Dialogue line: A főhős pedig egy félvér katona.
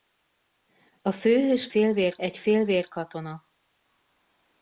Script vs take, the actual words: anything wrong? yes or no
yes